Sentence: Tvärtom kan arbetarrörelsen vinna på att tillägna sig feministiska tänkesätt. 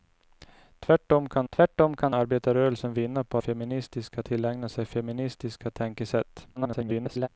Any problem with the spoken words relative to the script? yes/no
yes